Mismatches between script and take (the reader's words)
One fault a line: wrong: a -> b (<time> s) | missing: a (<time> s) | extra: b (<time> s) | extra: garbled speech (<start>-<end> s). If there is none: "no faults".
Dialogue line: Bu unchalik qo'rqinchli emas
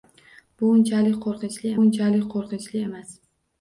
extra: unchalik qo'rqinchli (1.8 s)